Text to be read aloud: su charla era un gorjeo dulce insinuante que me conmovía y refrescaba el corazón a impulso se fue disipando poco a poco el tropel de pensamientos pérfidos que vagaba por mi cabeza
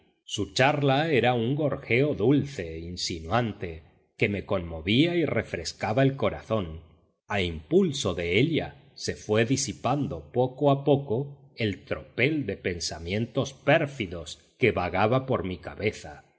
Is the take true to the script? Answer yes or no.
no